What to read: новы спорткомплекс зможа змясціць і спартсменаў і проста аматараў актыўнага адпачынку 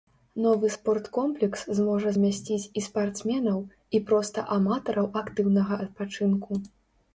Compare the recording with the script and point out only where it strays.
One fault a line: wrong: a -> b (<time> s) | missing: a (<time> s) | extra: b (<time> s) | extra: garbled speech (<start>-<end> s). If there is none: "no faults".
no faults